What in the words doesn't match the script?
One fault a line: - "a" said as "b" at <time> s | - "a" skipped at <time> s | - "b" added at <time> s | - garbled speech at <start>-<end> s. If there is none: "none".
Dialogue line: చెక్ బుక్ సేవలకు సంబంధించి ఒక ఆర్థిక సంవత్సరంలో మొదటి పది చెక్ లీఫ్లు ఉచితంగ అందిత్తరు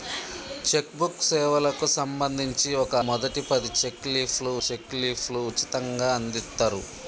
- "ఆర్థిక సంవత్సరంలో మొదటి పది" said as "మొదటి పది చెక్ లీఫ్లు" at 3.1 s